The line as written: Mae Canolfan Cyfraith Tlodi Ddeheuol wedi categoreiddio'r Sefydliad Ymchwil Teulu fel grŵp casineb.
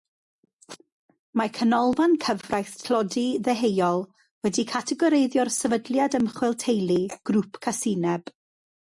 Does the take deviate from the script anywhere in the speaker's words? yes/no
yes